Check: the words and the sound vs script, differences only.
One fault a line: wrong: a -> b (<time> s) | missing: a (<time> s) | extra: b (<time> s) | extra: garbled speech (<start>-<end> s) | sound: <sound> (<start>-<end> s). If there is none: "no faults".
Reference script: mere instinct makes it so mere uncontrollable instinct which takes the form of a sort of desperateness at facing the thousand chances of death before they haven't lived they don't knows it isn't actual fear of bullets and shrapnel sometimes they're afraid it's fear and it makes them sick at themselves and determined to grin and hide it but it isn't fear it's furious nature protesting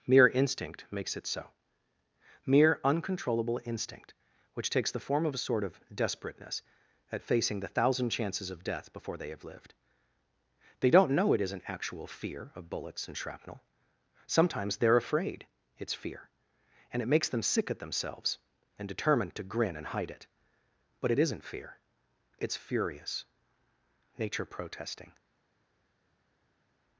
wrong: haven't -> have (9.3 s)
wrong: knows -> know (11.1 s)